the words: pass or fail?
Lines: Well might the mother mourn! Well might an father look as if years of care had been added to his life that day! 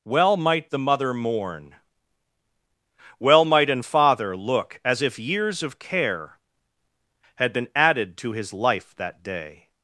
pass